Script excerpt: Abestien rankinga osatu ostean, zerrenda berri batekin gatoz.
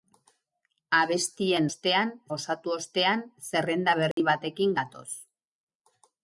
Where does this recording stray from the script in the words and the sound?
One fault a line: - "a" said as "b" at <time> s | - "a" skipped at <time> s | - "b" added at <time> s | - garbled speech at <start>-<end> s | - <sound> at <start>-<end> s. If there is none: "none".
- "rankinga" said as "ostean" at 1.7 s
- dropout at 4.1-4.2 s